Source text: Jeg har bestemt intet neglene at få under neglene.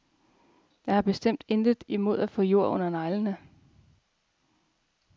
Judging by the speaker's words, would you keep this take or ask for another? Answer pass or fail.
fail